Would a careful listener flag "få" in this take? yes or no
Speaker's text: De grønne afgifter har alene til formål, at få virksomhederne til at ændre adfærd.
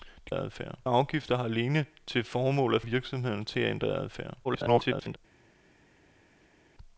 yes